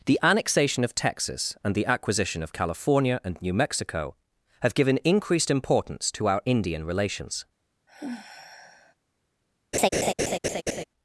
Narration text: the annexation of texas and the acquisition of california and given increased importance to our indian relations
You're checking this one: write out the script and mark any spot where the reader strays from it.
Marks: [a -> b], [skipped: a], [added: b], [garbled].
the annexation of texas and the acquisition of california and [added: new mexico have] given increased importance to our indian relations